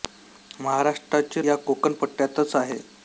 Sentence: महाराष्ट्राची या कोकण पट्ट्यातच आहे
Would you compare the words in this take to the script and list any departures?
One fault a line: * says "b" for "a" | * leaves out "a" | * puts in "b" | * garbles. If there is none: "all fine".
all fine